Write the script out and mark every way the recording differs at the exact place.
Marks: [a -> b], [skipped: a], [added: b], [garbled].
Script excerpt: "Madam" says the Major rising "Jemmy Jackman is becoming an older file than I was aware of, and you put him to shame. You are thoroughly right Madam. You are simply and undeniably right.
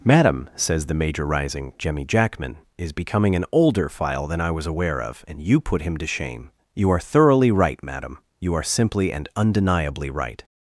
"Madam" says the Major rising "Jemmy Jackman is becoming an older file than I was aware of, and you put him to shame. You are thoroughly right Madam. You are simply and undeniably right.